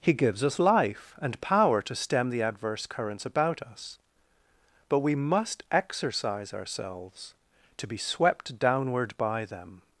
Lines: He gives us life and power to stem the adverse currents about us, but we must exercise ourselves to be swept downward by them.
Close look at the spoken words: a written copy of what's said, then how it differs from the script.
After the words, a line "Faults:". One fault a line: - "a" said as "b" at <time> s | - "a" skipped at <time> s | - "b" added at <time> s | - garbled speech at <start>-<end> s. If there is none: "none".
He gives us life and power to stem the adverse currents about us, but we must exercise ourselves to be swept downward by them.
Faults:
none